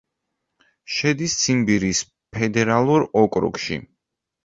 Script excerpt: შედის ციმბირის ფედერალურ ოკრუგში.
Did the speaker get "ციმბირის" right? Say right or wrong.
right